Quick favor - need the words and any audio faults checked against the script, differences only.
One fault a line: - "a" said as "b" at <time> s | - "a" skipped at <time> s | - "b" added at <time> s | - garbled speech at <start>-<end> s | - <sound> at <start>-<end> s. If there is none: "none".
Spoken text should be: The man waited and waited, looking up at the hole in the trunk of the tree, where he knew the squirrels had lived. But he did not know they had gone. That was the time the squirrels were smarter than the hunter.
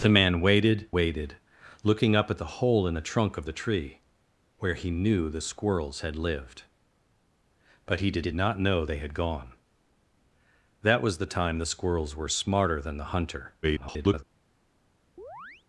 - "and" skipped at 0.9 s
- "did" added at 8.2 s
- garbled speech at 13.6-14.2 s
- chirp at 15.2-15.6 s